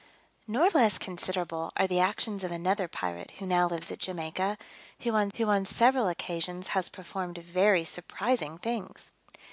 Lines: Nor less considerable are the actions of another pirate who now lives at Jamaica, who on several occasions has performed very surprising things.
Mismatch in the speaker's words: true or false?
true